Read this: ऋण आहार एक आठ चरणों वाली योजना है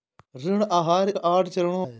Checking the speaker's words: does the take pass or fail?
fail